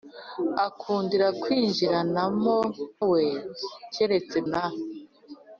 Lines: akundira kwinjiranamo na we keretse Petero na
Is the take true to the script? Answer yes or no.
no